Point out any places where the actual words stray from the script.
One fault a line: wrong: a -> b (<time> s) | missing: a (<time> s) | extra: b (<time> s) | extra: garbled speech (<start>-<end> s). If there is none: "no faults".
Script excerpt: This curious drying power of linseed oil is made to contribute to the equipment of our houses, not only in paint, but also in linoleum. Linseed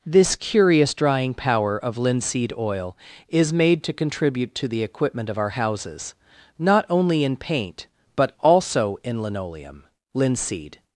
no faults